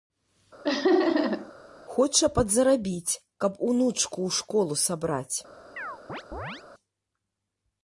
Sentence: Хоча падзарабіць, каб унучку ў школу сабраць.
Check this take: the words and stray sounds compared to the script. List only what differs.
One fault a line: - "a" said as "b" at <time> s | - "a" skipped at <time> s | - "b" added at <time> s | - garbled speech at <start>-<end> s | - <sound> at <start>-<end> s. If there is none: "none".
- laugh at 0.6-1.5 s
- chirp at 5.8-6.6 s